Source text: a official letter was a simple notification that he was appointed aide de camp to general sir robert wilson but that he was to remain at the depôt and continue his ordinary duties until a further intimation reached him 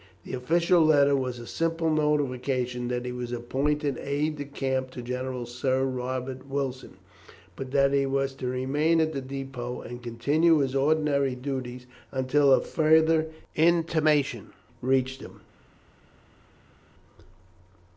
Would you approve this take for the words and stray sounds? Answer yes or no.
no